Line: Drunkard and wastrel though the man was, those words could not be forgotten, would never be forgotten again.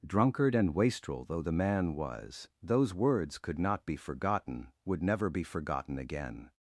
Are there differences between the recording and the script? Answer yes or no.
no